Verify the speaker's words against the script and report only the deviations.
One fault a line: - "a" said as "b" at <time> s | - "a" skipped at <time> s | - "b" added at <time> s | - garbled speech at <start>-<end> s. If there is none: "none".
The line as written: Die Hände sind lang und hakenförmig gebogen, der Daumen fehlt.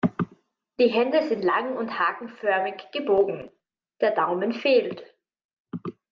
none